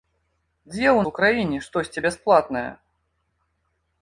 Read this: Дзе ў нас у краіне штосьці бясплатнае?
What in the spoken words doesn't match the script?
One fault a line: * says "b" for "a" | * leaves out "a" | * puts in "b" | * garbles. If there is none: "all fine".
* leaves out "нас"